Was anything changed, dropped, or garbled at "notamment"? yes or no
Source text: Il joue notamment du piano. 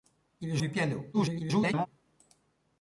yes